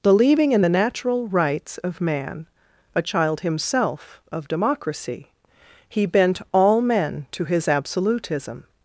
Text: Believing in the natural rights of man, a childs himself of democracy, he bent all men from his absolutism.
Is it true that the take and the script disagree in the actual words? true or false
true